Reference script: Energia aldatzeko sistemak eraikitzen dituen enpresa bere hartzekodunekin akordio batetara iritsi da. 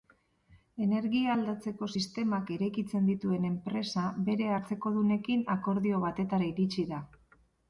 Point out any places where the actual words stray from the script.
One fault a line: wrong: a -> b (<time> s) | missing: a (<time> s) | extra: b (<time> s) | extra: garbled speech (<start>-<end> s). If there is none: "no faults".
no faults